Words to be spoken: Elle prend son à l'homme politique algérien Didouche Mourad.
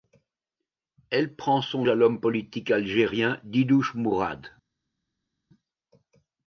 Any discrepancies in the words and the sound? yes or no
no